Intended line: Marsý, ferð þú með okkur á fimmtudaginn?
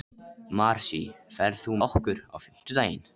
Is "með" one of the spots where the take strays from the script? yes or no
yes